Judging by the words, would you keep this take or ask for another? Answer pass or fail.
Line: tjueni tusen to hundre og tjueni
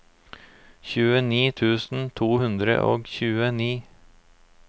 pass